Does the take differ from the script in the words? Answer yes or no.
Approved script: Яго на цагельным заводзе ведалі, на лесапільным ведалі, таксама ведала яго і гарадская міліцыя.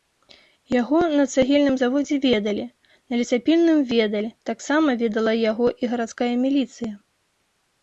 no